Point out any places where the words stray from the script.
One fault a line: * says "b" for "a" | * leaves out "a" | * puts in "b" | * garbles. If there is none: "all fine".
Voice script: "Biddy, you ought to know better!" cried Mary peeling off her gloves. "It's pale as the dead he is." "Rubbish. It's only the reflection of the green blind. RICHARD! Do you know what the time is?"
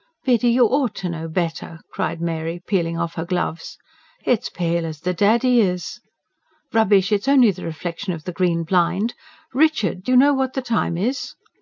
all fine